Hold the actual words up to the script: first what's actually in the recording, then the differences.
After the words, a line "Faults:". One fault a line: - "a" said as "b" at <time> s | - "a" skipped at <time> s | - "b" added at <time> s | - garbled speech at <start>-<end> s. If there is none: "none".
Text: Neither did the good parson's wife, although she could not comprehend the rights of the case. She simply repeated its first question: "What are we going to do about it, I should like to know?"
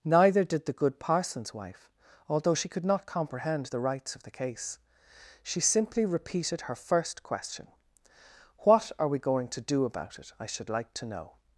Neither did the good parson's wife, although she could not comprehend the rights of the case. She simply repeated her first question: "What are we going to do about it, I should like to know?"
Faults:
- "its" said as "her" at 6.6 s